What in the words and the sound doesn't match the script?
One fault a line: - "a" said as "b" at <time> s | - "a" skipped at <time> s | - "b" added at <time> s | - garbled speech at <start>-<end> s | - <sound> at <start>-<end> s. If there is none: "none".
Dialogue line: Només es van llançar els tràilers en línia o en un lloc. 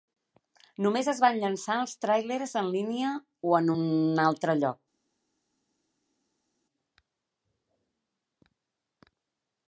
- "altre" added at 4.3 s